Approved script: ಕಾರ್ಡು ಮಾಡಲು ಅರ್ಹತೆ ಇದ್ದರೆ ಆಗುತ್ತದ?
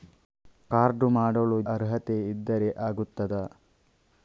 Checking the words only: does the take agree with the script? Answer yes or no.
yes